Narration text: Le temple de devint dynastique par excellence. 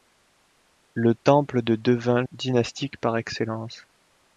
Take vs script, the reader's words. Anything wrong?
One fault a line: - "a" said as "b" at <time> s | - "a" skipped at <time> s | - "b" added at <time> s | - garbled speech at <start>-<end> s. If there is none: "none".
none